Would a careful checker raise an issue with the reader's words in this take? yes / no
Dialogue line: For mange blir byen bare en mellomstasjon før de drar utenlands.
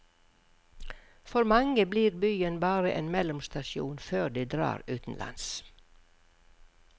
no